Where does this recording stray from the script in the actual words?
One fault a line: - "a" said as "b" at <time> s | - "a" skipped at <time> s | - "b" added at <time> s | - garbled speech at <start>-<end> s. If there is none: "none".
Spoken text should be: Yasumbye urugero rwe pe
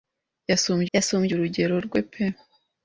- "yasumbye" added at 0.9 s